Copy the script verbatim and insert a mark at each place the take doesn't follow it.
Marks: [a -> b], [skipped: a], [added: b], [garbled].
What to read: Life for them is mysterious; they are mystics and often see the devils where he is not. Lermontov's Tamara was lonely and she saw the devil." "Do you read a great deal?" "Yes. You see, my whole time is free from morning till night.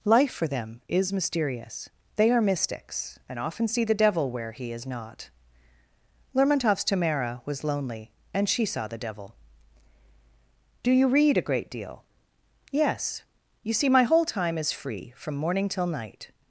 Life for them is mysterious; they are mystics and often see the [devils -> devil] where he is not. Lermontov's Tamara was lonely and she saw the devil." "Do you read a great deal?" "Yes. You see, my whole time is free from morning till night.